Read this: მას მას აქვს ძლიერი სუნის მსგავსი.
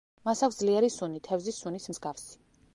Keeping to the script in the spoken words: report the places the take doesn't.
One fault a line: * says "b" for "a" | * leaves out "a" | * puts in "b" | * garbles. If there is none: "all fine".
* leaves out "მას"
* puts in "სუნი თევზის"